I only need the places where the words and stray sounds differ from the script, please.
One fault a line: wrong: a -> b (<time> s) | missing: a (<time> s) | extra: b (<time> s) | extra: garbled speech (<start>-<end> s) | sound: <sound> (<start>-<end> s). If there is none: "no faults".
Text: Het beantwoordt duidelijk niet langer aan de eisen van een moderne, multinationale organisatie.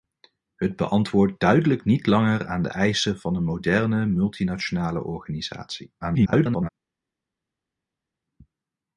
extra: garbled speech (6.0-6.7 s)